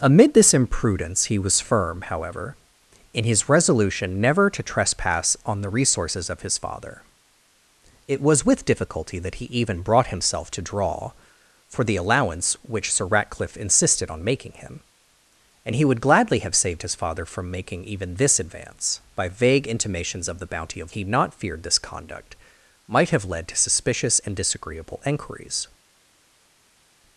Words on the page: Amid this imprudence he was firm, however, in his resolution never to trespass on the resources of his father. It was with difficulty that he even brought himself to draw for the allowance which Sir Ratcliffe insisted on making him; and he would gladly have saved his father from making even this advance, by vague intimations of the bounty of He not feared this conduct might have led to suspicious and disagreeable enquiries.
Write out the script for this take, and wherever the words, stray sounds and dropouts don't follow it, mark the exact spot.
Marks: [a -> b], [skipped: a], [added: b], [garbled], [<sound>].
Amid this imprudence he was firm, however, in his resolution never to trespass on the resources of his father. It was with difficulty that he even brought himself to draw for the allowance which Sir Ratcliffe insisted on making him; and he would gladly have saved his father from making even this advance, by vague intimations of the bounty of He not feared this conduct might have led to suspicious and disagreeable enquiries.